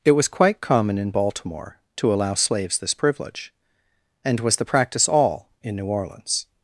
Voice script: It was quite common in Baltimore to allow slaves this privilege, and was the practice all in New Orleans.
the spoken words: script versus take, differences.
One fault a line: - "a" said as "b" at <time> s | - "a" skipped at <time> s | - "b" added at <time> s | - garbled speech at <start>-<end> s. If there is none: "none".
none